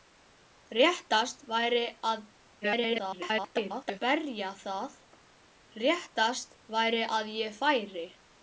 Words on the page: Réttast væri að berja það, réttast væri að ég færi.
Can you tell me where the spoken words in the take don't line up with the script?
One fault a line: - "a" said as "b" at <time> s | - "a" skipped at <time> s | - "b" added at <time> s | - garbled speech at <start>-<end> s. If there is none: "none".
- garbled speech at 2.6-4.0 s